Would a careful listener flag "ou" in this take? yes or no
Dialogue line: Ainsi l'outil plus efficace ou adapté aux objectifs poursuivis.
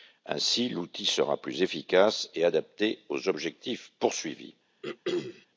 yes